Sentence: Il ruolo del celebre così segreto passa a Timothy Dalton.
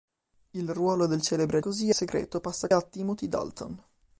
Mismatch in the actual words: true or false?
false